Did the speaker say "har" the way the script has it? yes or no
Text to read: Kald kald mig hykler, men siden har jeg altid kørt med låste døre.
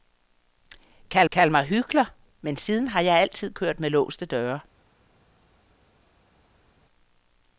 yes